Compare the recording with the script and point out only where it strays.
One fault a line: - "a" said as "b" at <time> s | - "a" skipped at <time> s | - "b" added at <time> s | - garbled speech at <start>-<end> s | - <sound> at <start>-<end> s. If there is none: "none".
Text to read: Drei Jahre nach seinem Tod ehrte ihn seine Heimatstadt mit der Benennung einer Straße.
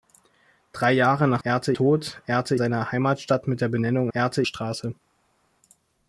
- "seinem" said as "ehrte" at 1.4 s
- "ihn" skipped at 2.5 s
- "einer" said as "ehrte" at 4.1 s